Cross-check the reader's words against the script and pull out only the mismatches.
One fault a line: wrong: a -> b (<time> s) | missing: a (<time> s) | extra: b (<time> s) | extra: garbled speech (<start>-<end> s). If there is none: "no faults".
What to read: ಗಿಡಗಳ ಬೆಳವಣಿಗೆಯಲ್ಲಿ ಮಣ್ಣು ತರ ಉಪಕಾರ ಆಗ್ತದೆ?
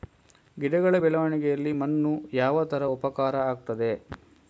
extra: ಯಾವ (2.3 s)